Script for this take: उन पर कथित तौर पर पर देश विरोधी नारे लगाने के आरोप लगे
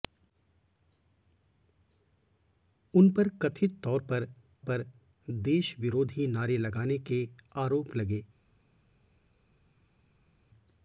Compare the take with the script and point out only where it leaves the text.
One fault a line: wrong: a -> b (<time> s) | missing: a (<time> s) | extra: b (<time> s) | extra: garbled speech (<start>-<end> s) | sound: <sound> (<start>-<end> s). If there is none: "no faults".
no faults